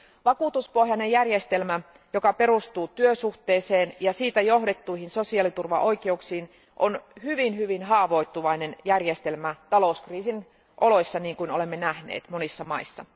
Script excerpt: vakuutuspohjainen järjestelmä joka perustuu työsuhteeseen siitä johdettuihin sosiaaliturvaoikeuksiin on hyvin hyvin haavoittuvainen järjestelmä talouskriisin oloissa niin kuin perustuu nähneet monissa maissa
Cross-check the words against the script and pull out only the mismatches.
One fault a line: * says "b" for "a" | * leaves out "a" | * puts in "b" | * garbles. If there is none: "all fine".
* puts in "ja"
* says "olemme" for "perustuu"